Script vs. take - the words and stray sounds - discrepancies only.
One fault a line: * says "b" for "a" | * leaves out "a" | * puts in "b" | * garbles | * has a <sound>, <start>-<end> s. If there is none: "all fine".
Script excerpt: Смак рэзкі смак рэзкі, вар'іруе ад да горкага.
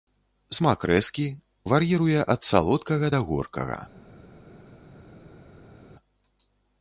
* leaves out "смак рэзкі"
* puts in "салодкага"